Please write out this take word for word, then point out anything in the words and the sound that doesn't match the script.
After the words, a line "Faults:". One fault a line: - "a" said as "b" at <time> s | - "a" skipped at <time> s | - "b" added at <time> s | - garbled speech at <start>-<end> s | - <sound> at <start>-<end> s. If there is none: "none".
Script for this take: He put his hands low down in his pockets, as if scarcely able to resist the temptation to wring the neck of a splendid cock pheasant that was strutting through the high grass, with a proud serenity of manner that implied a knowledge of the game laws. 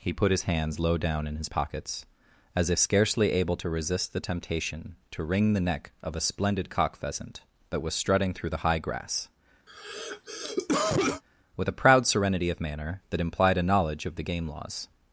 He put his hands low down in his pockets, as if scarcely able to resist the temptation to wring the neck of a splendid cock pheasant that was strutting through the high grass, with a proud serenity of manner that implied a knowledge of the game laws.
Faults:
- cough at 9.7-11.2 s